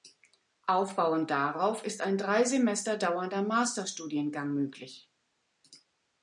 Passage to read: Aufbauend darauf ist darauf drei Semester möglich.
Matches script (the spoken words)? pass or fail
fail